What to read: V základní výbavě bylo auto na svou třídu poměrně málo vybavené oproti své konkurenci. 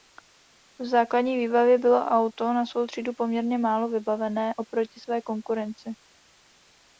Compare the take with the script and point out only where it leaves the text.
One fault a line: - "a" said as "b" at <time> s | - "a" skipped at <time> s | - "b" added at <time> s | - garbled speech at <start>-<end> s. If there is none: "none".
none